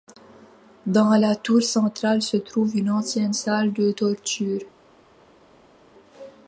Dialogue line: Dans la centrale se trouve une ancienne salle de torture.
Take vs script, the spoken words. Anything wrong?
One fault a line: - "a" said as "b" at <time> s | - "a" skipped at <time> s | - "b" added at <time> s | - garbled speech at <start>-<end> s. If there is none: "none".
- "tour" added at 1.4 s